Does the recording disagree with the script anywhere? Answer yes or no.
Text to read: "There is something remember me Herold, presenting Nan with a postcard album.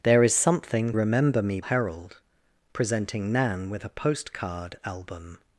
no